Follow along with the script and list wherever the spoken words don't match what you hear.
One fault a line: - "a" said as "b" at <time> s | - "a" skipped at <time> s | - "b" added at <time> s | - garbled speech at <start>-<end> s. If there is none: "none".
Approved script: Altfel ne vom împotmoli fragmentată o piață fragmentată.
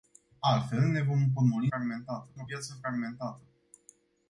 none